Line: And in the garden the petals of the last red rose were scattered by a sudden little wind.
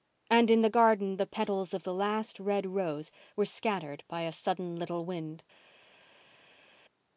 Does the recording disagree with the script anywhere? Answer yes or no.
no